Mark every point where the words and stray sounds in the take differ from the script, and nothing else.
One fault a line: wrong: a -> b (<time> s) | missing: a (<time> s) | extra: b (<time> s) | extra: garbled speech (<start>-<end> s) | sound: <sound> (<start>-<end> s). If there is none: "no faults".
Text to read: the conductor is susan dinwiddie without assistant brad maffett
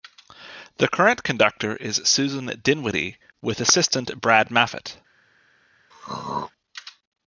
extra: current (0.9 s)
wrong: without -> with (3.4 s)
sound: throat clearing (5.9-6.5 s)